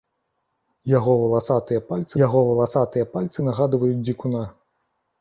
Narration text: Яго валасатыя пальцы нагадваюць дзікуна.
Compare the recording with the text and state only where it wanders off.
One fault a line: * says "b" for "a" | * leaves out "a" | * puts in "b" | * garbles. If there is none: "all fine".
* puts in "яго валасатыя пальцы"